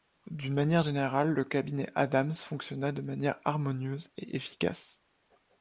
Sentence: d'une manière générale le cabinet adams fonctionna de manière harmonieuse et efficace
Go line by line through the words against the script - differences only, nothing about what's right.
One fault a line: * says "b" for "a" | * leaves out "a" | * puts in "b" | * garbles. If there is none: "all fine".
all fine